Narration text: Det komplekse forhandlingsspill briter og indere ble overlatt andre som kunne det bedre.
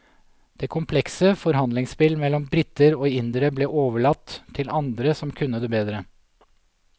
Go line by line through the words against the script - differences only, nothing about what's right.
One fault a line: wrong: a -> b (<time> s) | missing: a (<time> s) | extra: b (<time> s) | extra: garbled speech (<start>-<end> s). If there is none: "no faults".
extra: mellom (2.2 s)
extra: til (4.6 s)